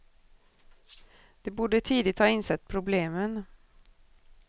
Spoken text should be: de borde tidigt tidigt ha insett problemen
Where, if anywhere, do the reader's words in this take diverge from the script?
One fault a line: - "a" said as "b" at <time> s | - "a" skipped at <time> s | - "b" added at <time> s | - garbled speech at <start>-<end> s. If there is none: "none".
- "tidigt" skipped at 2.2 s